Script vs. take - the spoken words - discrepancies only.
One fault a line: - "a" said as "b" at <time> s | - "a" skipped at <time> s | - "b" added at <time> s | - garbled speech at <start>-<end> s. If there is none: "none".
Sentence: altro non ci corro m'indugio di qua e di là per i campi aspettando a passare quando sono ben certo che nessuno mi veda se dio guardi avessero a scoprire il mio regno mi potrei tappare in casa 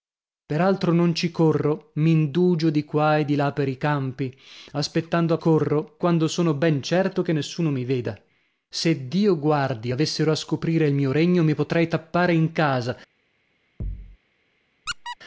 - "passare" said as "corro" at 5.4 s